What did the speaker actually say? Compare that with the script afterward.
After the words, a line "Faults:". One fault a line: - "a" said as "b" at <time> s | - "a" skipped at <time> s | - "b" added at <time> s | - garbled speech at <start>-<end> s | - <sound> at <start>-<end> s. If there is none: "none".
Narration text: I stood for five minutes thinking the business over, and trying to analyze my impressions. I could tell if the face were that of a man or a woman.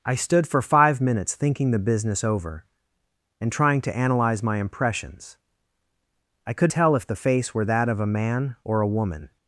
I stood for five minutes thinking the business over, and trying to analyze my impressions. I could tell if the face were that of a man or a woman.
Faults:
none